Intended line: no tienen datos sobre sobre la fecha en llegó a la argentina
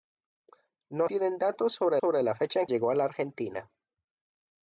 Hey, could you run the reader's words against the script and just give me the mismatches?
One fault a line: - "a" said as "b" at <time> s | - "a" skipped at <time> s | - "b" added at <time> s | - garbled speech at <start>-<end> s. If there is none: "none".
none